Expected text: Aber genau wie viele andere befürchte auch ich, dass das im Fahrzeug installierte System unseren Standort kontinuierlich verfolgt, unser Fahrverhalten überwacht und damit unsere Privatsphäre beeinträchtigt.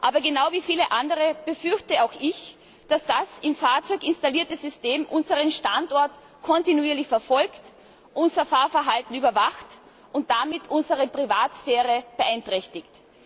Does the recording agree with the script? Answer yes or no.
yes